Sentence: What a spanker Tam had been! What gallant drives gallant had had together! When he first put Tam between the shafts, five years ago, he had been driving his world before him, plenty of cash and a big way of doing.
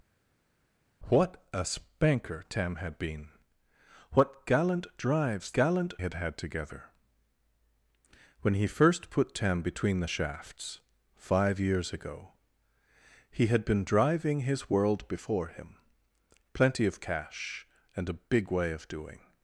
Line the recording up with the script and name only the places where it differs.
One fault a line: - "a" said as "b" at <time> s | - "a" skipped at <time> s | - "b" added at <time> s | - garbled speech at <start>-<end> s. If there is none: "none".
none